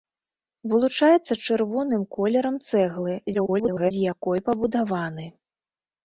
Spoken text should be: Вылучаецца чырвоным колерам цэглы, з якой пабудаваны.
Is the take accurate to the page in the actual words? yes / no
no